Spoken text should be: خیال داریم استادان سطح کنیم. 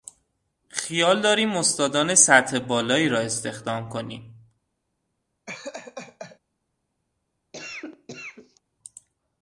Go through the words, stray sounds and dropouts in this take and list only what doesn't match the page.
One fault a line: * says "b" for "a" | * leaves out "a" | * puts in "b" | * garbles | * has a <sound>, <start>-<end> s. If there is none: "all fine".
* puts in "بالایی را استخدام"
* has a laugh, 5.5-6.4 s
* has a cough, 7.5-8.6 s